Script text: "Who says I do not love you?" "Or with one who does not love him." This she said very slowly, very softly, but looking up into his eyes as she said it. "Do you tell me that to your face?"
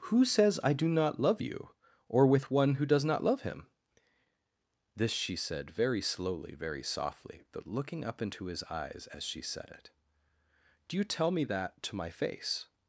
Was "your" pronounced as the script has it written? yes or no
no